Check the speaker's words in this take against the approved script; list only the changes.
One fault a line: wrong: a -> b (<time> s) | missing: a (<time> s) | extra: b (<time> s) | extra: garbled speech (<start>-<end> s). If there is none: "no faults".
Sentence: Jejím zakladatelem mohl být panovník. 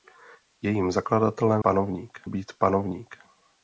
wrong: mohl -> panovník (1.6 s)